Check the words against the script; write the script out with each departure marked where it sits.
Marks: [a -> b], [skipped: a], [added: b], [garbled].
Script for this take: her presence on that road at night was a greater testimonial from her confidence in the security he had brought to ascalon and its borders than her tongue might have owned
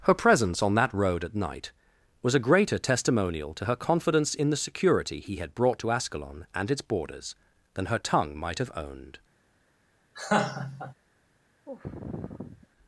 her presence on that road at night was a greater testimonial [from -> to] her confidence in the security he had brought to ascalon and its borders than her tongue might have owned